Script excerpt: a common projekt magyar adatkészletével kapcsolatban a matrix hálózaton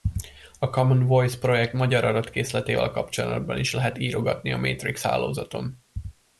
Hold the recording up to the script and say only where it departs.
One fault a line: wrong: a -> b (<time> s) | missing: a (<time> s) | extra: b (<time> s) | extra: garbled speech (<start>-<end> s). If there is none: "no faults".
extra: voice (1.1 s)
extra: is lehet írogatni (3.6 s)